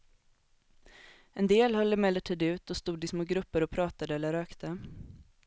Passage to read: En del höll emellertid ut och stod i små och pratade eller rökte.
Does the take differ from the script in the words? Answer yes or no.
yes